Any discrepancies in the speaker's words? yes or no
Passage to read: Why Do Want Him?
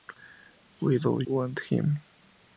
no